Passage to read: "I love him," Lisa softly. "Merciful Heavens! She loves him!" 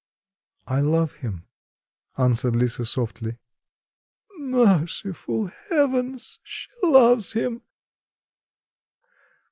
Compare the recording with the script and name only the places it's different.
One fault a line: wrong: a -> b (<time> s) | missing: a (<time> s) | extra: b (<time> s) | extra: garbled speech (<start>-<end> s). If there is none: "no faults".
extra: answered (2.2 s)